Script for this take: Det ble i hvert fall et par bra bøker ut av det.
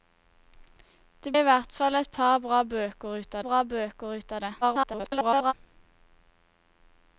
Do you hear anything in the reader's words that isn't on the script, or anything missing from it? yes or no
yes